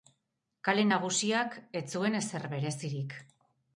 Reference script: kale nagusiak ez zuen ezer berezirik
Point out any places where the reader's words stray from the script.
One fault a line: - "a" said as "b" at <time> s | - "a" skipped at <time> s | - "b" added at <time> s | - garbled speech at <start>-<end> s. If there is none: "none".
none